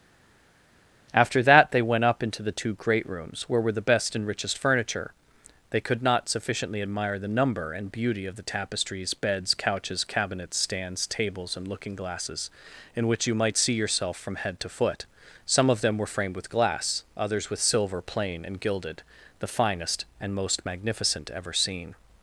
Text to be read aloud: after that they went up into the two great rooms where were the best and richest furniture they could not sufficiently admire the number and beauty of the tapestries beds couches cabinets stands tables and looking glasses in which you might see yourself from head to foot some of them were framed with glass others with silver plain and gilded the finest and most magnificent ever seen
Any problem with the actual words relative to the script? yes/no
no